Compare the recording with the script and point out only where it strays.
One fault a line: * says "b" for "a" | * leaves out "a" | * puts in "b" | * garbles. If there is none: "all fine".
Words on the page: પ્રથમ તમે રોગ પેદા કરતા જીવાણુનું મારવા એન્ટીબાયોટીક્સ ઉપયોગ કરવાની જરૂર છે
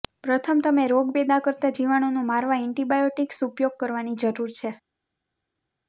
all fine